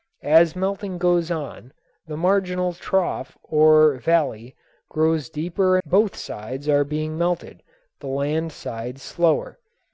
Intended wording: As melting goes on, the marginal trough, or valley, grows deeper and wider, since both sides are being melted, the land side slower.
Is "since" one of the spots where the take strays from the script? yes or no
yes